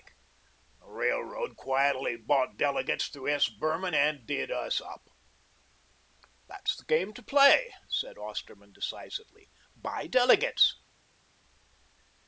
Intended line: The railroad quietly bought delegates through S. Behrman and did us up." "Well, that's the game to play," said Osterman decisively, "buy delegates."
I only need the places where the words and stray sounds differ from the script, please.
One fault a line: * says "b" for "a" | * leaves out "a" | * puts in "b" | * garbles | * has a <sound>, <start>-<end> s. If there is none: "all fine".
* leaves out "Well"